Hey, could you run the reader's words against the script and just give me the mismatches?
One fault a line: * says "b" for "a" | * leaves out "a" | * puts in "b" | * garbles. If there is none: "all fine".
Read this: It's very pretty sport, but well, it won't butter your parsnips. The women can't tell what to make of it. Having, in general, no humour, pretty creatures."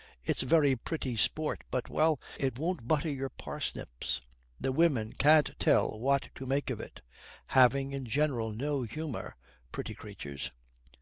all fine